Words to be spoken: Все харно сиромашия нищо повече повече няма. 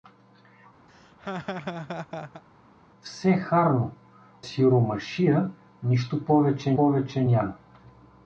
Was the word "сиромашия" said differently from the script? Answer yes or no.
no